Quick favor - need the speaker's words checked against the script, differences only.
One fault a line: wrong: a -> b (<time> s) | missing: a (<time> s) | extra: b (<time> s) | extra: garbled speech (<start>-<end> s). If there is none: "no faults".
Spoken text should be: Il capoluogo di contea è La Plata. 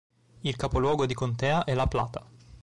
no faults